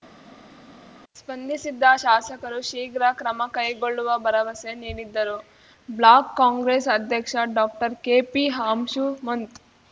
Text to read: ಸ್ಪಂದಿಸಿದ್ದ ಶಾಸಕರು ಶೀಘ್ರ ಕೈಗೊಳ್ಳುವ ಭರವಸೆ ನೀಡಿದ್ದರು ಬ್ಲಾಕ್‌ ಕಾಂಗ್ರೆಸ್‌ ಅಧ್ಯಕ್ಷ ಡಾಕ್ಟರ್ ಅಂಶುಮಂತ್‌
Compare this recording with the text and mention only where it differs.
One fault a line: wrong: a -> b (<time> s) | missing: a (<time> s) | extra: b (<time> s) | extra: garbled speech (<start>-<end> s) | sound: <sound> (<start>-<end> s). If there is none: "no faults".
extra: ಕ್ರಮ (3.1 s)
extra: ಕೆಪಿ (8.0 s)